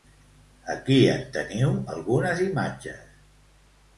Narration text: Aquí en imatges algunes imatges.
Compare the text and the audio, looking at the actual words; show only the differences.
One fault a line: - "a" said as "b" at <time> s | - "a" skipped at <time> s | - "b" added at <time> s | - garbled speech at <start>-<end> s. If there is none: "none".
- "imatges" said as "teniu" at 1.4 s